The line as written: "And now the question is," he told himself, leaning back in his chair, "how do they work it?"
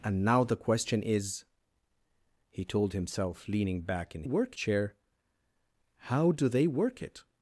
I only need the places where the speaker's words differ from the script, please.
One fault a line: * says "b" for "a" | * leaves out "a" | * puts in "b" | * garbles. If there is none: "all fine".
* says "work" for "his"